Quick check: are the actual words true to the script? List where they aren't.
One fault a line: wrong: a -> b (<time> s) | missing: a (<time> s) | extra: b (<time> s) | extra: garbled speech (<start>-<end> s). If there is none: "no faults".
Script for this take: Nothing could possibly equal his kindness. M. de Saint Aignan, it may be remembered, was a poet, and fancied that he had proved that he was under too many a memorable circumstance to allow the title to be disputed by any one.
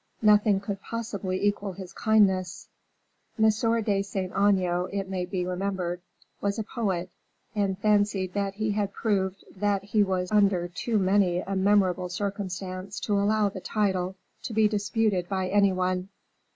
no faults